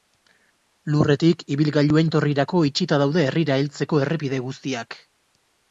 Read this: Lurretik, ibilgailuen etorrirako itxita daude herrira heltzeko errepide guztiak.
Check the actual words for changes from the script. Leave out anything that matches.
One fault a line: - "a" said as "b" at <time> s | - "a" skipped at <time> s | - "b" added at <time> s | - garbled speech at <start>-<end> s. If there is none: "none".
none